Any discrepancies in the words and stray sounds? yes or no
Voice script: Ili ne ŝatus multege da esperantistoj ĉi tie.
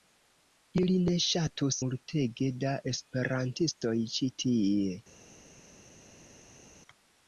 no